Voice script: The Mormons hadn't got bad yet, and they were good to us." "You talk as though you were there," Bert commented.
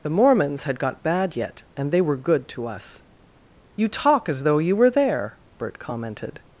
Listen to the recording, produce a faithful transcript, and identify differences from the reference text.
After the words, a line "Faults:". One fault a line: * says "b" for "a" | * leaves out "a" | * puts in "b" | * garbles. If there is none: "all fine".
The Mormons had got bad yet, and they were good to us." "You talk as though you were there," Bert commented.
Faults:
* says "had" for "hadn't"